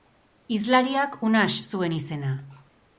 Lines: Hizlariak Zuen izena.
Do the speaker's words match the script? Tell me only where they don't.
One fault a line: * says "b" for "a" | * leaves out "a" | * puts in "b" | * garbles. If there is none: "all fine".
* puts in "Unax"